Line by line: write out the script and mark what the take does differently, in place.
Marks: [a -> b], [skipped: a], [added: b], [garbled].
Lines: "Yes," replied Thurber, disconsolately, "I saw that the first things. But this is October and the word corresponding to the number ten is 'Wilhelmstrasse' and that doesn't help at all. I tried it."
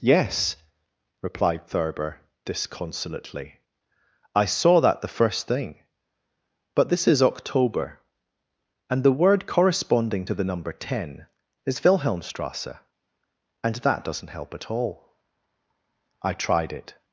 "Yes," replied Thurber, disconsolately, "I saw that the first [things. -> thing] But this is October and the word corresponding to the number ten is 'Wilhelmstrasse' and that doesn't help at all. I tried it."